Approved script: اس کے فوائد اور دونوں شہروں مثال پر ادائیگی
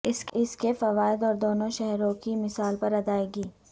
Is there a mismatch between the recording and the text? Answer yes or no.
yes